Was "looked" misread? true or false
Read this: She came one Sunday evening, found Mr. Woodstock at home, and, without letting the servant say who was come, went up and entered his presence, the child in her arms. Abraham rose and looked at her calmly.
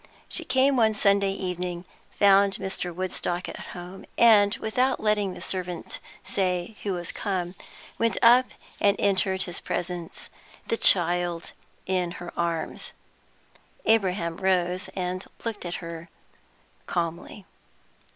false